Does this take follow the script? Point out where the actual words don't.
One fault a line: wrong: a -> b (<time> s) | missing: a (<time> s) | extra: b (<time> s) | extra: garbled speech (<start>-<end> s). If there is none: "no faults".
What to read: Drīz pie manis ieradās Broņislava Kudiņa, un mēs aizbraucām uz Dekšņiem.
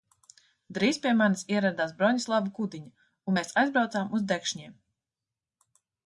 no faults